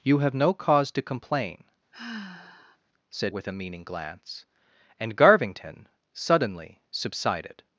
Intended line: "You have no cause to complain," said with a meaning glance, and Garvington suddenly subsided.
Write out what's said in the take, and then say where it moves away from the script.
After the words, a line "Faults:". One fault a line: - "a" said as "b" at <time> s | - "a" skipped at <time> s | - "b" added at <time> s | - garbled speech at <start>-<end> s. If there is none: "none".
"You have no cause to complain," said with a meaning glance, and Garvington suddenly subsided.
Faults:
none